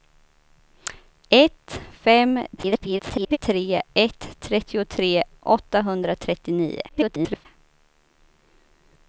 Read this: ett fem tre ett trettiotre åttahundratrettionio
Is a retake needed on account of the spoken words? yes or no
yes